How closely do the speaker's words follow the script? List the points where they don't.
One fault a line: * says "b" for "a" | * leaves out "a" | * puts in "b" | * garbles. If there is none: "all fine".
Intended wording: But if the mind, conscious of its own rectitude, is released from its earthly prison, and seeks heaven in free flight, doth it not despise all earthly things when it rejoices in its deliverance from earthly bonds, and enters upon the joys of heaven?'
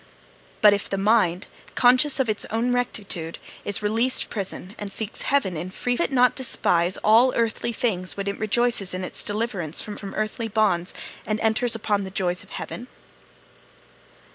* leaves out "from its earthly"
* leaves out "flight doth"
* puts in "from"